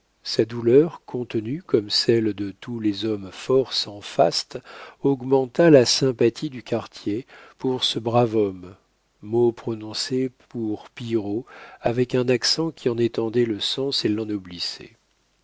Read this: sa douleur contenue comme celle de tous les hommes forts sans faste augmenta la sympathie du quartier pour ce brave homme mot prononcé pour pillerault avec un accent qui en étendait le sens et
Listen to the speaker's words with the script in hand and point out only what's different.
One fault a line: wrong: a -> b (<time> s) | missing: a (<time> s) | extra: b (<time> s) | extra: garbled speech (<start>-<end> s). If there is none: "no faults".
no faults